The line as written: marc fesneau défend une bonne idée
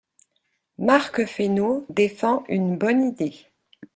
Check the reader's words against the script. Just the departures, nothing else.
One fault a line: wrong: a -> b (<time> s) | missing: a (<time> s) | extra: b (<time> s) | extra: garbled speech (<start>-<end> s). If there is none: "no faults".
no faults